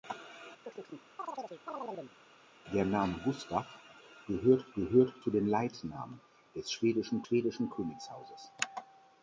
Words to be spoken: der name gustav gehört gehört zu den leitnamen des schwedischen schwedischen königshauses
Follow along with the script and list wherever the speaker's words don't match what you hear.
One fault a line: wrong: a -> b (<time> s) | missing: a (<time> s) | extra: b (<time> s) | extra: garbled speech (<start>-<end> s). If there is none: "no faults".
no faults